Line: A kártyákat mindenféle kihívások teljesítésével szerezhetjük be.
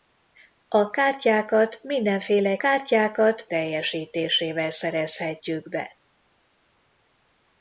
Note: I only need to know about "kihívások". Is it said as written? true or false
false